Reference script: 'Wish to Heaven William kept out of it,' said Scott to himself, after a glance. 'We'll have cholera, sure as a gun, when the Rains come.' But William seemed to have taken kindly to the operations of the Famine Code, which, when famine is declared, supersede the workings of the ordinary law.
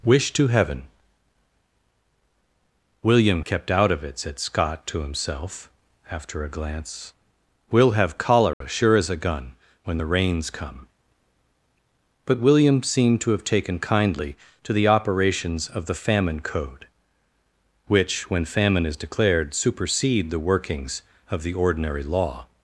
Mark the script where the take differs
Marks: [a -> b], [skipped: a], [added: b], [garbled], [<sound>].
'Wish to Heaven William kept out of it,' said Scott to himself, after a glance. 'We'll have cholera, [dropout] sure as a gun, when the Rains come.' But William seemed to have taken kindly to the operations of the Famine Code, which, when famine is declared, supersede the workings of the ordinary law.